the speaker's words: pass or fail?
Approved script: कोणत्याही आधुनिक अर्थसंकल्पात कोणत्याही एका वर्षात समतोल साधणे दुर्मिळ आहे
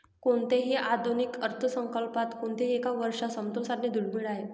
pass